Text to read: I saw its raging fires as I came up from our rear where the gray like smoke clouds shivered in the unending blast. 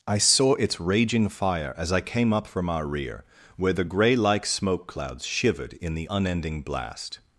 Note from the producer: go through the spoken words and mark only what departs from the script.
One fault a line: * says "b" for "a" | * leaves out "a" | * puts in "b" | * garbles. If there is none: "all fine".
* says "fire" for "fires"